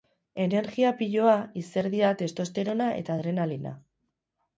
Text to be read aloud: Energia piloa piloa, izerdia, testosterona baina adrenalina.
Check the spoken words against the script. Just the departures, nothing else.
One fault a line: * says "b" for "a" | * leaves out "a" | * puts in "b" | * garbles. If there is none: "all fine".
* leaves out "piloa"
* says "eta" for "baina"